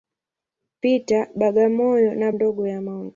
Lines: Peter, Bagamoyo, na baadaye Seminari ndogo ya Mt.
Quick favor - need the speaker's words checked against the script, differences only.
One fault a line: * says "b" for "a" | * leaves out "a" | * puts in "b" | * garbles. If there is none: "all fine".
* leaves out "baadaye Seminari"